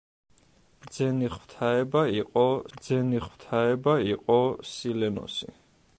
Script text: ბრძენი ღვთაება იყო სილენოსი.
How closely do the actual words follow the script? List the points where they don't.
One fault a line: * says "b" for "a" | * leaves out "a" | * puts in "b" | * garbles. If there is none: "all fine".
* puts in "ბრძენი ღვთაება იყო"